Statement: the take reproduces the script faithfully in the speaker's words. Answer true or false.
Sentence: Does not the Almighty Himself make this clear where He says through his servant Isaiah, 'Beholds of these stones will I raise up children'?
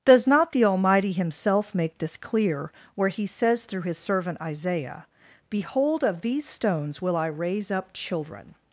false